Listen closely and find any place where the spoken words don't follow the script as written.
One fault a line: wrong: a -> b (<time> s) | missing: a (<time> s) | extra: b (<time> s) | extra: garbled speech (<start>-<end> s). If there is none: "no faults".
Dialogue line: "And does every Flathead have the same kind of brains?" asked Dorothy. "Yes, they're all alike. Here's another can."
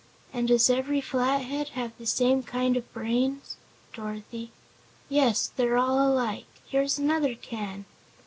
missing: asked (3.6 s)